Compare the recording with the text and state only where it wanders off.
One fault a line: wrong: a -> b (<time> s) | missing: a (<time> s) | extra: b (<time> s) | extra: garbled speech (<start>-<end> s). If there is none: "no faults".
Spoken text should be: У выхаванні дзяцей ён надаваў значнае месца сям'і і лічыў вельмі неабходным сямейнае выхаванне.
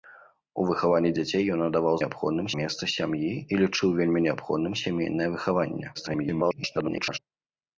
wrong: значнае -> неабходным (2.0 s)
extra: garbled speech (5.9-7.2 s)